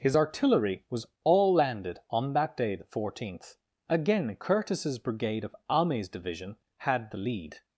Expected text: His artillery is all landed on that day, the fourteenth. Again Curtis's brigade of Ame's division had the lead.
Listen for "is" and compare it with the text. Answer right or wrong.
wrong